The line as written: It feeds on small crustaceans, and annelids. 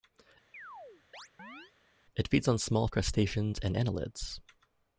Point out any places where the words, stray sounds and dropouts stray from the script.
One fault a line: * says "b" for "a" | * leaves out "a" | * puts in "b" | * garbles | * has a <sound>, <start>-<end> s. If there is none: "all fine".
* has a chirp, 0.5-1.7 s